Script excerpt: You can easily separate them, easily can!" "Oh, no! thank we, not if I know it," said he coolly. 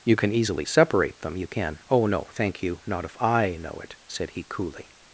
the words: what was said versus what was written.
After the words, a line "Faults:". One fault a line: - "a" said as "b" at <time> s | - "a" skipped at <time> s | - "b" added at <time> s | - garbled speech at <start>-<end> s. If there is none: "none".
You can easily separate them, you can!" "Oh, no! thank you, not if I know it," said he coolly.
Faults:
- "easily" said as "you" at 1.4 s
- "we" said as "you" at 2.6 s